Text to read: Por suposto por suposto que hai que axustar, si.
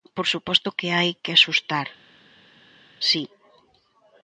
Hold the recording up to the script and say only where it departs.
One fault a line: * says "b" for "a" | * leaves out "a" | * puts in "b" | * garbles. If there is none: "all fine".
* leaves out "por suposto"